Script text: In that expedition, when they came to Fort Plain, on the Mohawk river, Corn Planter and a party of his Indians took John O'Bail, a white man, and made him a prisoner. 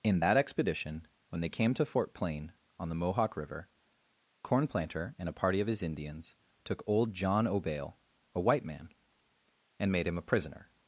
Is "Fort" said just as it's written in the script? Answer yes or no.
yes